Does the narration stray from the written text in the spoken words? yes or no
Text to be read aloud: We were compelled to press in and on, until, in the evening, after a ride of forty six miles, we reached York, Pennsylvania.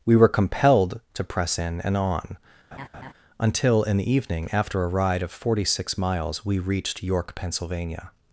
no